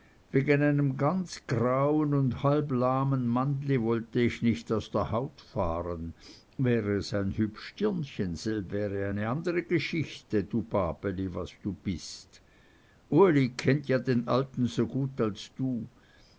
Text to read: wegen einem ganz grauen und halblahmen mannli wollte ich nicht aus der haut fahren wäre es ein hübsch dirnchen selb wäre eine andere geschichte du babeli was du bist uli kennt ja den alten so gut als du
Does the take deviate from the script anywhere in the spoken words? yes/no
no